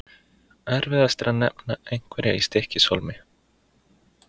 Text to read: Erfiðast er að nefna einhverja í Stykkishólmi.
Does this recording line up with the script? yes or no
yes